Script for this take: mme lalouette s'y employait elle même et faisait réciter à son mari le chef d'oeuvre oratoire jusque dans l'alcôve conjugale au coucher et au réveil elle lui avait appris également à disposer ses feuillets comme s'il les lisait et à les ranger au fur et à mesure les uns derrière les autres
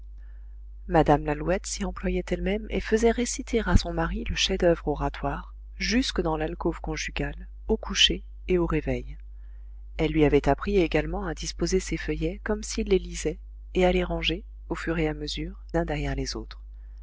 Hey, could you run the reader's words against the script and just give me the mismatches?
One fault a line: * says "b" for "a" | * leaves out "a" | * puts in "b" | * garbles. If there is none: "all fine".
* leaves out "les"